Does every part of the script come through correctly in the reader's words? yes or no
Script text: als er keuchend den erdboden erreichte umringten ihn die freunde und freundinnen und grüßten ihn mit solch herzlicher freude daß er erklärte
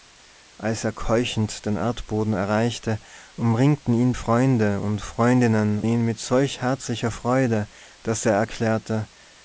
no